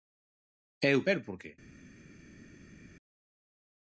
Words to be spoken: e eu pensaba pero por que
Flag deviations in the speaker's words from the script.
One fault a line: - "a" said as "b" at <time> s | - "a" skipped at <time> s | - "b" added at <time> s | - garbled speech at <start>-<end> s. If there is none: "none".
- "pensaba" skipped at 1.0 s